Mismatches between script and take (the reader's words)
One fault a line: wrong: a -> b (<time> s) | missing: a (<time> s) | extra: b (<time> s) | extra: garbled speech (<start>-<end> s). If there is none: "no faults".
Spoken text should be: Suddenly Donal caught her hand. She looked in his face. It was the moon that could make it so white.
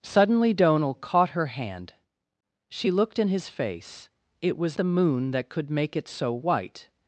no faults